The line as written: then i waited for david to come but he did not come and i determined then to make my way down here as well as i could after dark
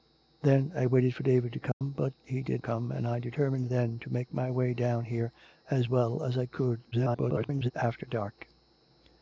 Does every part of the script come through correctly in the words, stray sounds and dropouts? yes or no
no